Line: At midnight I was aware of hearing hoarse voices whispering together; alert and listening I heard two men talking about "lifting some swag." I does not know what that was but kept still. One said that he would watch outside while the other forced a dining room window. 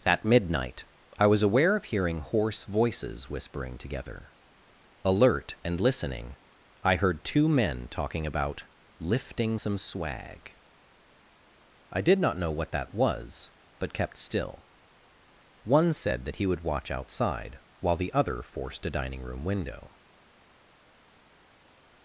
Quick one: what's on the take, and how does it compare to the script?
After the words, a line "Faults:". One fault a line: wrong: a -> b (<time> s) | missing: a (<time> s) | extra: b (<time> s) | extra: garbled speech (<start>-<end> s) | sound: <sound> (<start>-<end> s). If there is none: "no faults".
At midnight I was aware of hearing hoarse voices whispering together; alert and listening I heard two men talking about "lifting some swag." I did not know what that was but kept still. One said that he would watch outside while the other forced a dining room window.
Faults:
wrong: does -> did (12.0 s)